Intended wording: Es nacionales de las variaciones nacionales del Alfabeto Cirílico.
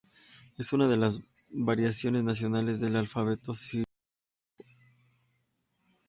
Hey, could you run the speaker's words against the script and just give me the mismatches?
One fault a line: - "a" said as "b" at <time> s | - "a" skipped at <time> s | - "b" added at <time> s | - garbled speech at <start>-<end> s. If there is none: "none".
- "nacionales" said as "una" at 0.7 s